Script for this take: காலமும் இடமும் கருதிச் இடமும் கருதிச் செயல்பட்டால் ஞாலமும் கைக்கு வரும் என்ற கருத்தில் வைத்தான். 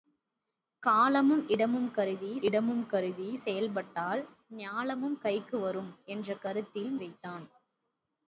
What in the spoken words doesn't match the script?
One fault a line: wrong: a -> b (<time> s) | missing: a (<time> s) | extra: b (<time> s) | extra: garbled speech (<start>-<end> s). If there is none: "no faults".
no faults